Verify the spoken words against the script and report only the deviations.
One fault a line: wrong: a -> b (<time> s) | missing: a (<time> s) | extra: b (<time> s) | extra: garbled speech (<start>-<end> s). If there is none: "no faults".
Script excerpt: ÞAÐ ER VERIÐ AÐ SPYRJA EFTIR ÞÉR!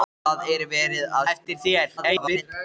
missing: SPYRJA (1.2 s)
extra: garbled speech (2.0-2.4 s)